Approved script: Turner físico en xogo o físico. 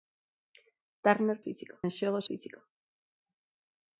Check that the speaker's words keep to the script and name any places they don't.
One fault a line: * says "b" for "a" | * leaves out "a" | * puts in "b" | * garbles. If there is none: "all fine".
all fine